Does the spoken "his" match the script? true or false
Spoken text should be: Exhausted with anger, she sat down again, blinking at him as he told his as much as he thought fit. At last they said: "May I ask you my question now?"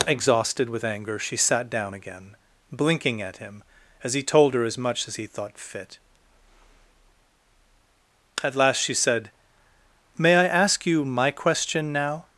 false